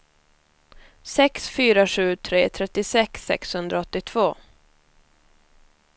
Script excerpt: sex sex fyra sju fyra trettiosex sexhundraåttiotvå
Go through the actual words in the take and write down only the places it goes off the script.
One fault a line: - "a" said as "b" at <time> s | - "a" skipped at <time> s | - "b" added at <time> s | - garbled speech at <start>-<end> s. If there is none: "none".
- "sex" skipped at 1.5 s
- "fyra" said as "tre" at 2.2 s